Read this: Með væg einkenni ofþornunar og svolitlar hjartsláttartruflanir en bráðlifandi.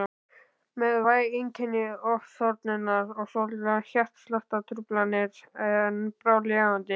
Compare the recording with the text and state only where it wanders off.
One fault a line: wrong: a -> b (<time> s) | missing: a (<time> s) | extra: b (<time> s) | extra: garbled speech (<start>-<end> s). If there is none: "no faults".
no faults